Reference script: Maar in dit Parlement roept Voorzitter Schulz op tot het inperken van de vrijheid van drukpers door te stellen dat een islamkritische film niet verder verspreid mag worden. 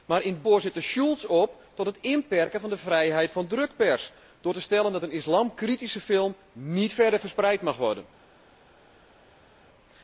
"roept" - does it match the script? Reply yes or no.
no